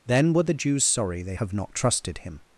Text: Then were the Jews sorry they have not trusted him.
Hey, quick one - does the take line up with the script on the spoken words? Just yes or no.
yes